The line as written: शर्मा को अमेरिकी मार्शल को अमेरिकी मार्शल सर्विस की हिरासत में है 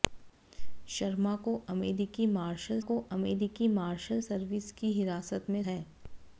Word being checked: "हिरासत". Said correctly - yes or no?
yes